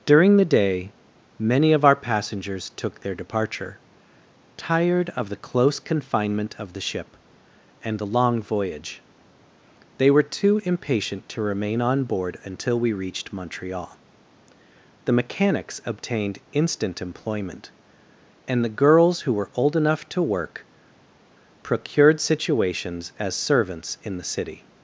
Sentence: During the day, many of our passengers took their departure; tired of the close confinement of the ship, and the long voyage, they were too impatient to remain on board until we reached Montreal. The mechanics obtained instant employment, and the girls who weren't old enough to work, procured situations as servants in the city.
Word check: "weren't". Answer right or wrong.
wrong